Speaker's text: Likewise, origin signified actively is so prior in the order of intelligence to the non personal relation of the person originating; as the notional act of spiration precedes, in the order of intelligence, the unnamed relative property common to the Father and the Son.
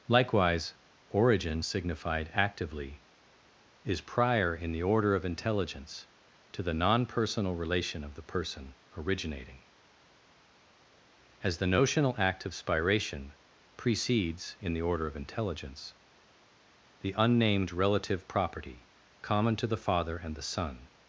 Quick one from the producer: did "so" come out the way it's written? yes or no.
no